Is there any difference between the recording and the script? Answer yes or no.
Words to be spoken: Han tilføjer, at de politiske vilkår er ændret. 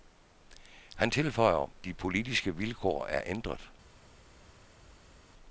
yes